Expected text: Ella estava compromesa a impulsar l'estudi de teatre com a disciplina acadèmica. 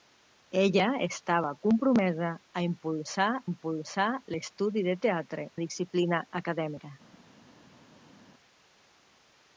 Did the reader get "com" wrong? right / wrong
wrong